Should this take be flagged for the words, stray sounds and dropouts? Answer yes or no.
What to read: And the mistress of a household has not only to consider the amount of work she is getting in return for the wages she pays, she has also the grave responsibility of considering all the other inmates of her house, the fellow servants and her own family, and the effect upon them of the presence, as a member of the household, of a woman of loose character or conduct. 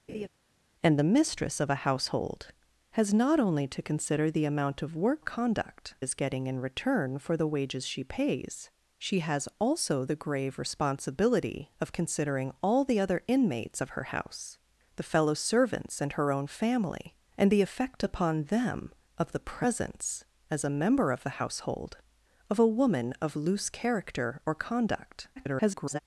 yes